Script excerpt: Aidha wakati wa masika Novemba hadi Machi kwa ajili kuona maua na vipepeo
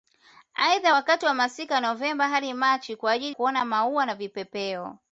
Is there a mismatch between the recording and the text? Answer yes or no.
no